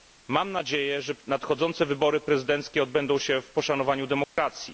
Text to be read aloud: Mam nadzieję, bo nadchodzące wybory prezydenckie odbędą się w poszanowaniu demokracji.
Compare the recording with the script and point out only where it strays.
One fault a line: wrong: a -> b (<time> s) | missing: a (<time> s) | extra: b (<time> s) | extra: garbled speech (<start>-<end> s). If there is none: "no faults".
wrong: bo -> że (1.0 s)